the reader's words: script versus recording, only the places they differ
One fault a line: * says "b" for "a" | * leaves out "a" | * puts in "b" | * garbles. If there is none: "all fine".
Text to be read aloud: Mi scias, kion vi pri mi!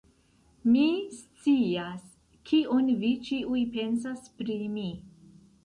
* puts in "ĉiuj pensas"